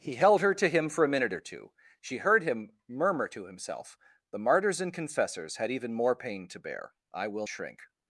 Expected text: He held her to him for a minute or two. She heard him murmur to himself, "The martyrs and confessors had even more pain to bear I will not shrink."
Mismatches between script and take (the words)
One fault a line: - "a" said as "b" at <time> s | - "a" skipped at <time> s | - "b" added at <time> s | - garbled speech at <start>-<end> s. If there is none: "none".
- "not" skipped at 7.5 s